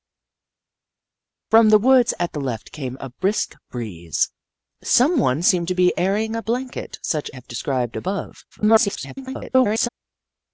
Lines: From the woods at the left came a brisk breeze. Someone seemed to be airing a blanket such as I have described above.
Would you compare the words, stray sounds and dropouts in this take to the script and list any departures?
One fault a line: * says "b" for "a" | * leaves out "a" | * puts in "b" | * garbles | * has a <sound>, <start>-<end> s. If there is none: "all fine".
* leaves out "as I"
* garbles